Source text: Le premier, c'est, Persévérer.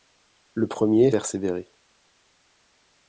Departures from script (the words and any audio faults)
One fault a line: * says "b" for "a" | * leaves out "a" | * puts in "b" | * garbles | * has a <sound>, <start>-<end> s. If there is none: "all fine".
* leaves out "c'est"